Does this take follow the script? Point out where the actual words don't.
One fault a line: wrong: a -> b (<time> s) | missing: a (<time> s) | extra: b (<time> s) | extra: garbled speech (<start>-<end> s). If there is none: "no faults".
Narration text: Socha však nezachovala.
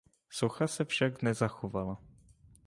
extra: se (0.7 s)